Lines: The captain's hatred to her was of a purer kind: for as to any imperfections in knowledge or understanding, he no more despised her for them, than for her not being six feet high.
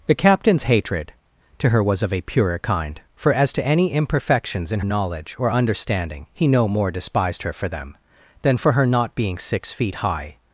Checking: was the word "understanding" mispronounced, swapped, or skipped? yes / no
no